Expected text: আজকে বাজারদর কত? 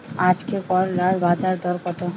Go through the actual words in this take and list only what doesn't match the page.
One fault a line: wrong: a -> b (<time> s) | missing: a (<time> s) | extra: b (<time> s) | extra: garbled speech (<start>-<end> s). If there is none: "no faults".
extra: করলার (0.7 s)